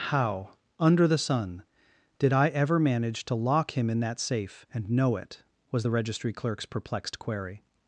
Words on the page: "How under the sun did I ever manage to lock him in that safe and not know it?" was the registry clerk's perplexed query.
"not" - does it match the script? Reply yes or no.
no